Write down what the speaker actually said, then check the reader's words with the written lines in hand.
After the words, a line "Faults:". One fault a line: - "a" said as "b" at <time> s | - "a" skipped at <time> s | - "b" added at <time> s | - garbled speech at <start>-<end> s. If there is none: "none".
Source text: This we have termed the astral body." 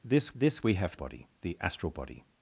This this we have body the astral body."
Faults:
- "this" added at 0.3 s
- "termed" said as "body" at 0.9 s